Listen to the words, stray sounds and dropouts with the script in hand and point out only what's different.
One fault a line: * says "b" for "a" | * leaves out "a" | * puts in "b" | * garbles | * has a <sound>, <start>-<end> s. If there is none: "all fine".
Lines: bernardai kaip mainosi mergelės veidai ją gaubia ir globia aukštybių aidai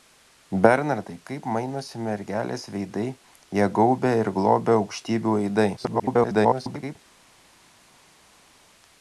* garbles